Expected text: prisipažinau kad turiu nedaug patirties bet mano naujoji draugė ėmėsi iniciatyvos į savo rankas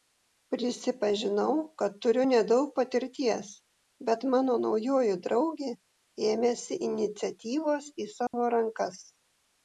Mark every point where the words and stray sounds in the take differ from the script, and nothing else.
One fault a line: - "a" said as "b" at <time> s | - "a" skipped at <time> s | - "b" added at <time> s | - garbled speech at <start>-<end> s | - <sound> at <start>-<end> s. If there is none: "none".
- dropout at 8.3-8.3 s